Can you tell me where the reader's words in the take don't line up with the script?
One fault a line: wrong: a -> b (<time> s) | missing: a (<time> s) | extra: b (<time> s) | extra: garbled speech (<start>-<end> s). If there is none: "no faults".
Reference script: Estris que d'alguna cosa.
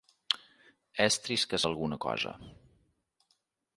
no faults